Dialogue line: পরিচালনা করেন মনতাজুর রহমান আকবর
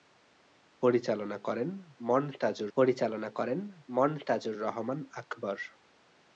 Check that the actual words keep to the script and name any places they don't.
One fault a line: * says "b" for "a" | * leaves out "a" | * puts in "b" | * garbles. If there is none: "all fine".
* puts in "পরিচালনা করেন মনতাজুর"